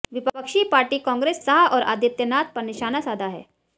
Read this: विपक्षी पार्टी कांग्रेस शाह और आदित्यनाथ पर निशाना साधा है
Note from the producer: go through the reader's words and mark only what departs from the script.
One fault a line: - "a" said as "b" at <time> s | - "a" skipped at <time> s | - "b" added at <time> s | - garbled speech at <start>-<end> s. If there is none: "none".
none